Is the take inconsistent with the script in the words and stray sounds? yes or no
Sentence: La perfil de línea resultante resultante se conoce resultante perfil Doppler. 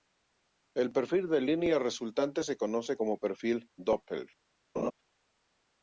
yes